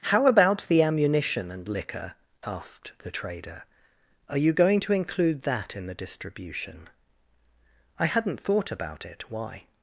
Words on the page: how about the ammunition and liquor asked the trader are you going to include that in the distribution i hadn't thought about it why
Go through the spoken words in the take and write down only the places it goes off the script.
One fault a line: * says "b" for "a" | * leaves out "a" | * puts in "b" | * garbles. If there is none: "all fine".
all fine